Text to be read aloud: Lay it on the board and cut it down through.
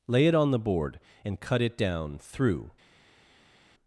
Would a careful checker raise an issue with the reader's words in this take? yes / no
no